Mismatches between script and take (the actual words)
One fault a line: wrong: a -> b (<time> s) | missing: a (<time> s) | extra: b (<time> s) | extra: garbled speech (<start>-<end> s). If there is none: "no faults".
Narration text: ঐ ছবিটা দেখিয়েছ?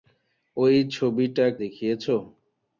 no faults